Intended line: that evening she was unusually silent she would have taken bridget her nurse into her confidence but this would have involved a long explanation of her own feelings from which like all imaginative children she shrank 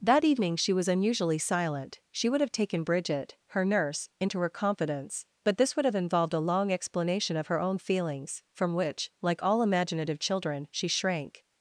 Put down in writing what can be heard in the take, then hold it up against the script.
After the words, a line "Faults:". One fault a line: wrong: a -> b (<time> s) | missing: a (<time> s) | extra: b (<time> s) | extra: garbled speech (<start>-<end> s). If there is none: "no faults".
that evening she was unusually silent she would have taken bridget her nurse into her confidence but this would have involved a long explanation of her own feelings from which like all imaginative children she shrank
Faults:
no faults